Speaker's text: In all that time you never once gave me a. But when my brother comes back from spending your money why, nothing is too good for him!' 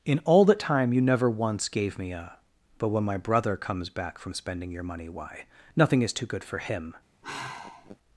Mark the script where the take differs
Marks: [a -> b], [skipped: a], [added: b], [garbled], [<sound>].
In all that time you never once gave me a. But when my brother comes back from spending your money why, nothing is too good for him!' [sigh]